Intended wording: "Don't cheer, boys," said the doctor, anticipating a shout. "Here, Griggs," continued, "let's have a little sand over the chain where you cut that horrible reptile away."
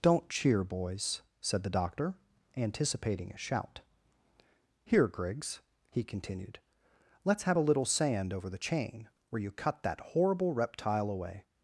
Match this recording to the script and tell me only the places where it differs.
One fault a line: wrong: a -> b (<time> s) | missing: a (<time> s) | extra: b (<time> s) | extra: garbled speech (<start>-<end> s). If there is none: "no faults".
extra: he (5.9 s)